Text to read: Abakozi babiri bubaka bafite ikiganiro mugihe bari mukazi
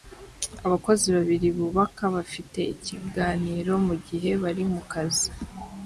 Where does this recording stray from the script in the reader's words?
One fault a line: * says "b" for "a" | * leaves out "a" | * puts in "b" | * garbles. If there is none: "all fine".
all fine